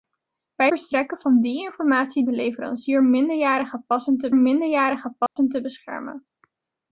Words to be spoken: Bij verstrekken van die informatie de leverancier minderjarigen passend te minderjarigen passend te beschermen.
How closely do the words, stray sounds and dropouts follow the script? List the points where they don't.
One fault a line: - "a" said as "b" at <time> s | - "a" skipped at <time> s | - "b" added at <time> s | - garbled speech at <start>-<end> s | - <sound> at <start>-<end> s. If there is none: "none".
- dropout at 5.3-5.4 s